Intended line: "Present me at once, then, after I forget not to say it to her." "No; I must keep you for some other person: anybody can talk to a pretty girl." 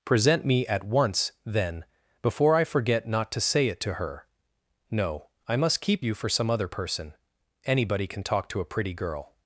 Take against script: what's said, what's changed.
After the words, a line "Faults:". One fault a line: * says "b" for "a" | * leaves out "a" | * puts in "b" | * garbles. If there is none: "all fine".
"Present me at once, then, before I forget not to say it to her." "No; I must keep you for some other person: anybody can talk to a pretty girl."
Faults:
* says "before" for "after"